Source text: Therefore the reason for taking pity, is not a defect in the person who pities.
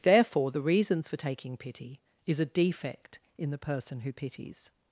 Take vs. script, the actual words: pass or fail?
fail